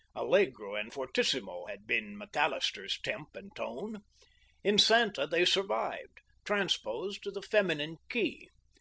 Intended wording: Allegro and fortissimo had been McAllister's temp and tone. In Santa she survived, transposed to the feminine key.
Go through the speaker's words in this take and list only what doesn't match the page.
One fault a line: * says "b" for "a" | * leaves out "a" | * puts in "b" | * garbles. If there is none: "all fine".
* says "they" for "she"